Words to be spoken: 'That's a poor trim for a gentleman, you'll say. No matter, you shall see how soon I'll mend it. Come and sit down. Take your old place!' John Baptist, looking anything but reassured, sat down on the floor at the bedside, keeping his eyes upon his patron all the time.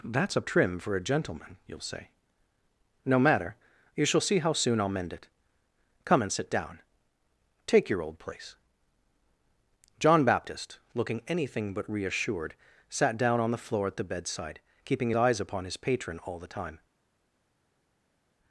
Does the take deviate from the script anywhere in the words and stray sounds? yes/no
yes